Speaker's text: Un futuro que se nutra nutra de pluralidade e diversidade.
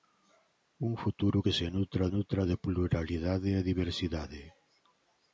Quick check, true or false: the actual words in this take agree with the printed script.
true